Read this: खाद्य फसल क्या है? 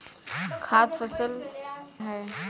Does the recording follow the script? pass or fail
fail